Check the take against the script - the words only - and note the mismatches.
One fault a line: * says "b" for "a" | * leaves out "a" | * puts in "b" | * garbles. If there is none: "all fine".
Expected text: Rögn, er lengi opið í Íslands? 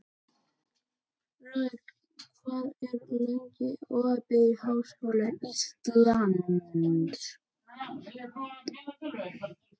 * puts in "hvað"
* puts in "Háskóla"